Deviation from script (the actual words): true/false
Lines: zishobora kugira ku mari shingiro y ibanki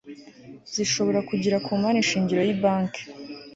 false